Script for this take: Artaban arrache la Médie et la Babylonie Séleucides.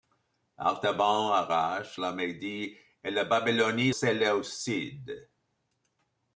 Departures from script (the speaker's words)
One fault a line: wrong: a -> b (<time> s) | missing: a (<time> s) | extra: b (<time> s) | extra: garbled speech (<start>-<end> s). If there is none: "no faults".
no faults